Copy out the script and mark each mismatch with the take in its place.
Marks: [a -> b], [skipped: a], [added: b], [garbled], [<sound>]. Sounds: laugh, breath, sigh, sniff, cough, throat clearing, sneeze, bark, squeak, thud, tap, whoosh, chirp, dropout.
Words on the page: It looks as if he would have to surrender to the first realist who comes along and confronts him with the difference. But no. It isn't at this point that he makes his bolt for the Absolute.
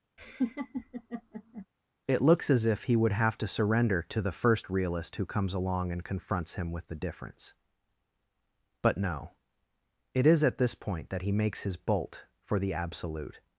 [laugh] It looks as if he would have to surrender to the first realist who comes along and confronts him with the difference. But no. It [isn't -> is] at this point that he makes his bolt for the Absolute.